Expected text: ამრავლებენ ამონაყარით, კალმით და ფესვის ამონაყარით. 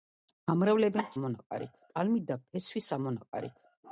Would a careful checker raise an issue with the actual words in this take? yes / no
no